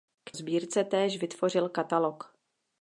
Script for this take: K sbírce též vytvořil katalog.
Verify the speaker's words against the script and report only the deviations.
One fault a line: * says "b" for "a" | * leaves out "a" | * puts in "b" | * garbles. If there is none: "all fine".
all fine